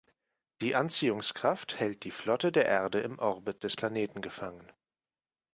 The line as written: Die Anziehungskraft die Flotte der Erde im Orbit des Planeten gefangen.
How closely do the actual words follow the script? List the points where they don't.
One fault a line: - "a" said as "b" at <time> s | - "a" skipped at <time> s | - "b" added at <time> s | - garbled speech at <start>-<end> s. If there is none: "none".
- "hält" added at 1.8 s